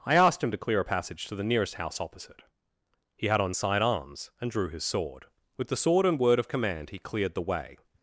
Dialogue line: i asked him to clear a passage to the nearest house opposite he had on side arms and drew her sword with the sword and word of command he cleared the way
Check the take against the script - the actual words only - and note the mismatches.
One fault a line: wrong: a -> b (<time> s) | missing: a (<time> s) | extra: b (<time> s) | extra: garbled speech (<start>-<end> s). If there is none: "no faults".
wrong: her -> his (4.7 s)